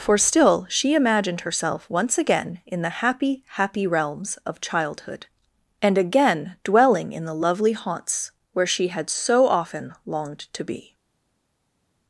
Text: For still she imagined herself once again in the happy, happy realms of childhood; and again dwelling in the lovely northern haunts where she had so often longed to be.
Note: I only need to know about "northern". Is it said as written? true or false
false